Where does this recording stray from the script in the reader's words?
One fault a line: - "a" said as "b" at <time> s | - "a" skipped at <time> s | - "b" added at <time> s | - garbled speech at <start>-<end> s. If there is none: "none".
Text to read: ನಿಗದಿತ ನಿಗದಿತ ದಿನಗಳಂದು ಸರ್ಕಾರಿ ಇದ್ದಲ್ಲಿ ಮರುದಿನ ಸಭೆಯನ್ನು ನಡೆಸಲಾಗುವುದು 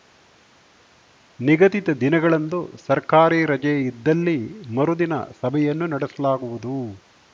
- "ನಿಗದಿತ" skipped at 1.9 s
- "ರಜೆ" added at 3.5 s